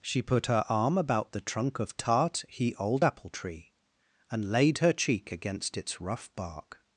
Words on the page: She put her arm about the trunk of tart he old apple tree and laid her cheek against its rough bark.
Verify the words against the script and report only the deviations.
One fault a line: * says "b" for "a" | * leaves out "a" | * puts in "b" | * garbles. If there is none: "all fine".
all fine